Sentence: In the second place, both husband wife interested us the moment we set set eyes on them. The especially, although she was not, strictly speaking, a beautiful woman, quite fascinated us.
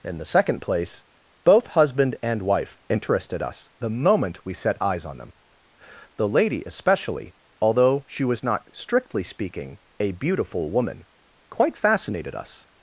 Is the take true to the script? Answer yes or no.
no